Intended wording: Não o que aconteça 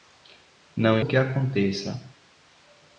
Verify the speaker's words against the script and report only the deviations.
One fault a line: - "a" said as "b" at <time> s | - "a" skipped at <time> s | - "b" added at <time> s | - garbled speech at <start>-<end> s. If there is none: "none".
none